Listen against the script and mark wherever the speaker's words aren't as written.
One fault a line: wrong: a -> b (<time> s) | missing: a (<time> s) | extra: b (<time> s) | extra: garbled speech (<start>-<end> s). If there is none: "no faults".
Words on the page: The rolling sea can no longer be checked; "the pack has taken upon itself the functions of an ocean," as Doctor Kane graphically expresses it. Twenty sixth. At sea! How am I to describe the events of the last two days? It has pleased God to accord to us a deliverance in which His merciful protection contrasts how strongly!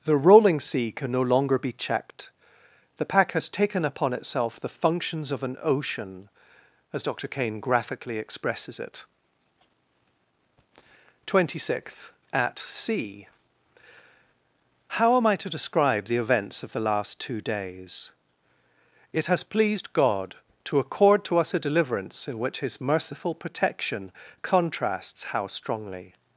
no faults